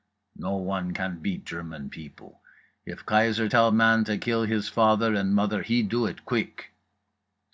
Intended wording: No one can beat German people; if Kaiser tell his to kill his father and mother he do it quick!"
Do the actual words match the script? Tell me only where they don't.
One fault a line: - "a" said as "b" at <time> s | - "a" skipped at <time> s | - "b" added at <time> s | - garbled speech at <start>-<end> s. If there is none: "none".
- "his" said as "man" at 3.7 s